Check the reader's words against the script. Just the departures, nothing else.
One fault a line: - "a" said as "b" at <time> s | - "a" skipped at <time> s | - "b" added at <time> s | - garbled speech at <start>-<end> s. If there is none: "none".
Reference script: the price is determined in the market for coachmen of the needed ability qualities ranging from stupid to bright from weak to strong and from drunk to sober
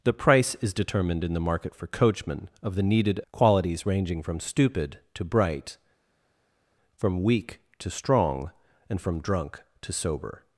- "ability" skipped at 3.2 s